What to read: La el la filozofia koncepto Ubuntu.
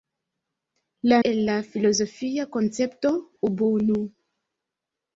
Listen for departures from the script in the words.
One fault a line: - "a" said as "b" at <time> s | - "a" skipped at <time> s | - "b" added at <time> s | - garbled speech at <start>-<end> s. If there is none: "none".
none